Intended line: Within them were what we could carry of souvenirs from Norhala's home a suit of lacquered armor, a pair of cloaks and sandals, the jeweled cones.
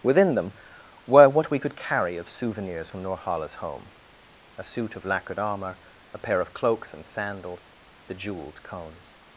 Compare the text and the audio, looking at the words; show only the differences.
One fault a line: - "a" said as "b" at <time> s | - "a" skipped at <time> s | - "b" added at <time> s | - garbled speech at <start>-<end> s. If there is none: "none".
none